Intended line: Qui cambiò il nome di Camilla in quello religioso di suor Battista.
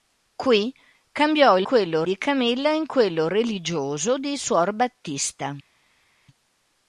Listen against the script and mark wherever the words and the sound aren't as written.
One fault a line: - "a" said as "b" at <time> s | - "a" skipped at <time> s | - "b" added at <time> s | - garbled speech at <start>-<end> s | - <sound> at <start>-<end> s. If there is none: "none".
- "nome" said as "quello" at 1.6 s